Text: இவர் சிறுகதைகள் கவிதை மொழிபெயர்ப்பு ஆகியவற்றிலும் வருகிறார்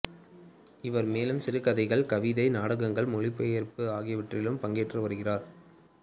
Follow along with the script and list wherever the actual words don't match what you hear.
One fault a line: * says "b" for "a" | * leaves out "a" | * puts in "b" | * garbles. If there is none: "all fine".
* puts in "மேலும்"
* puts in "நாடகங்கள்"
* puts in "பங்கேற்று"